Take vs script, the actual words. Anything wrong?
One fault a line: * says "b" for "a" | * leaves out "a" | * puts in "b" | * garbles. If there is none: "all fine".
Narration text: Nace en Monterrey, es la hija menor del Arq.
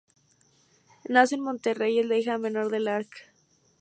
all fine